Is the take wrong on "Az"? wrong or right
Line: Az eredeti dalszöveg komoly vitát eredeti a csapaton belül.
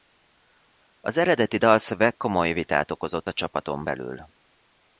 right